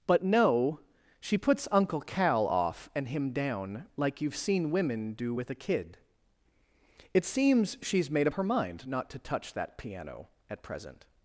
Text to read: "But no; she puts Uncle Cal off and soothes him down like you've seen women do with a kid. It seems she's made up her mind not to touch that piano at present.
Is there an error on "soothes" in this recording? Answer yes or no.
yes